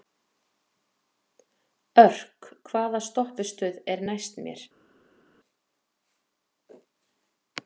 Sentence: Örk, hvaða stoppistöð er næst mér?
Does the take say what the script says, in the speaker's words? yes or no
yes